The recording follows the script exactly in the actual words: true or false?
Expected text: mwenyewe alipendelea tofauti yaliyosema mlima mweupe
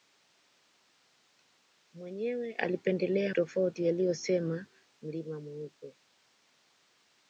true